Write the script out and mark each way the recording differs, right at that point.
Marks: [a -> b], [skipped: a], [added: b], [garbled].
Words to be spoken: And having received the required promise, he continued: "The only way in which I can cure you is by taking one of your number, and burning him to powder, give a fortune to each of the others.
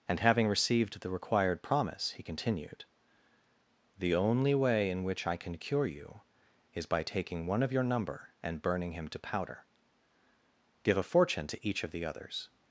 And having received the required promise, he continued: "The only way in which I can cure you is by taking one of your number, and burning him to powder, give a fortune to each of the others.